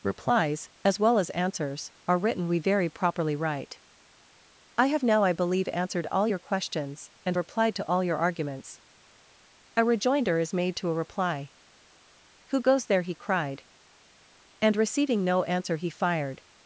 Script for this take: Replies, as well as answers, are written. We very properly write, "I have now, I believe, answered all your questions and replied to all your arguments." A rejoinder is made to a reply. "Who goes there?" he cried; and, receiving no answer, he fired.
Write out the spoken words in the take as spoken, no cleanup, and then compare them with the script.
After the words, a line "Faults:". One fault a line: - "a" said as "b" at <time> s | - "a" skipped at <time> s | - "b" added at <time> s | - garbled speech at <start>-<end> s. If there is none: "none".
Replies, as well as answers, are written. We very properly write, "I have now, I believe, answered all your questions and replied to all your arguments." A rejoinder is made to a reply. "Who goes there?" he cried; and, receiving no answer, he fired.
Faults:
none